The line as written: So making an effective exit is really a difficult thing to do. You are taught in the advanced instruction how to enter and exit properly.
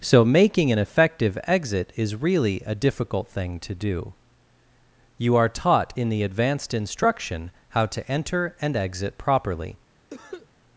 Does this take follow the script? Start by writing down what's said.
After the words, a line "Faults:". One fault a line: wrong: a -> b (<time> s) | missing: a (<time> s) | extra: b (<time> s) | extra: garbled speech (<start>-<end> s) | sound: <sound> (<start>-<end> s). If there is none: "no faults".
So making an effective exit is really a difficult thing to do. You are taught in the advanced instruction how to enter and exit properly.
Faults:
sound: cough (10.1-10.5 s)